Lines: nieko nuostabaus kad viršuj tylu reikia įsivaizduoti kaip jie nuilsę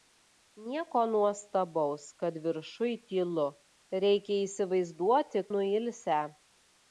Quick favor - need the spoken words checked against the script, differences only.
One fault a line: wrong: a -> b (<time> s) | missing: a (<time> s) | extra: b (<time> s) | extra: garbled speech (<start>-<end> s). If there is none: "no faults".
missing: kaip jie (5.5 s)